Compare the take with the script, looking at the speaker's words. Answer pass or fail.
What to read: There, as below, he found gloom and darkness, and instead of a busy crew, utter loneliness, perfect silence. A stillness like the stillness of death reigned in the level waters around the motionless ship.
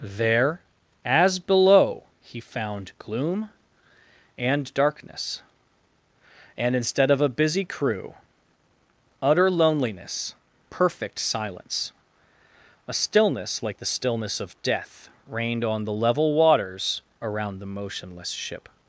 fail